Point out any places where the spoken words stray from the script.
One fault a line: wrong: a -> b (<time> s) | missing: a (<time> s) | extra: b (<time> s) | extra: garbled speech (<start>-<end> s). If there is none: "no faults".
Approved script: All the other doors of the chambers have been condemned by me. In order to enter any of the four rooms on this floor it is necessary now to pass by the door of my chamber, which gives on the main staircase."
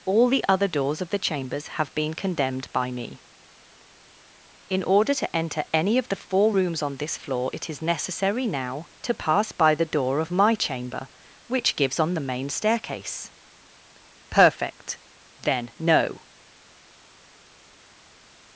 extra: Perfect Then no (14.3 s)